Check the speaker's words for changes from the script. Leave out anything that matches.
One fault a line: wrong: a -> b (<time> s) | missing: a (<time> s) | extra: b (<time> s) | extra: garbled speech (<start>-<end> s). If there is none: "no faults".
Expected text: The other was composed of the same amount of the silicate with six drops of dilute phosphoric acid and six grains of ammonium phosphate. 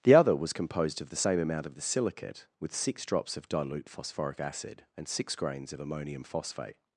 no faults